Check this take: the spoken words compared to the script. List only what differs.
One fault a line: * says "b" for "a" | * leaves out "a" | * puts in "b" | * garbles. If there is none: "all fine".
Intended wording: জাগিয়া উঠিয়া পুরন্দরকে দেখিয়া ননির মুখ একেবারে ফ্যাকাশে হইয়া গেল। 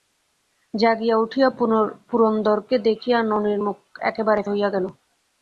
* leaves out "ফ্যাকাশে"